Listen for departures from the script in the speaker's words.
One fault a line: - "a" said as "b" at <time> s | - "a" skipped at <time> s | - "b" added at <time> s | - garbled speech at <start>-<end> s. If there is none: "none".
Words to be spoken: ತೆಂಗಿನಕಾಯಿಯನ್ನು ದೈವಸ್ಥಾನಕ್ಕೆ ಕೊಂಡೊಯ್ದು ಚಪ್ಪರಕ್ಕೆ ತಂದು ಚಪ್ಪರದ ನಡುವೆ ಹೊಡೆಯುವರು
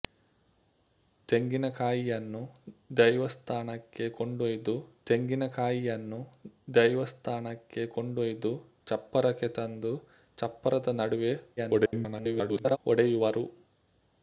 - "ತೆಂಗಿನಕಾಯಿಯನ್ನು ದೈವಸ್ಥಾನಕ್ಕೆ ಕೊಂಡೊಯ್ದು" added at 5.1 s
- garbled speech at 11.6-12.8 s